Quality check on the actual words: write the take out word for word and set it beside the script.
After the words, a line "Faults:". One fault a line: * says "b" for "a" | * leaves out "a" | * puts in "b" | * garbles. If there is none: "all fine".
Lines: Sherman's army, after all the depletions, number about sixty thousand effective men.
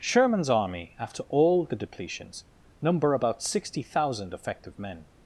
Sherman's army, after all the depletions, number about sixty thousand effective men.
Faults:
all fine